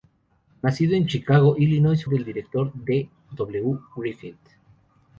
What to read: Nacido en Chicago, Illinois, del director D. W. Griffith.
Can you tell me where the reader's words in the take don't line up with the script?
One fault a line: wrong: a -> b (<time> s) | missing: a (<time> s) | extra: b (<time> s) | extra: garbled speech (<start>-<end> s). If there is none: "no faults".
no faults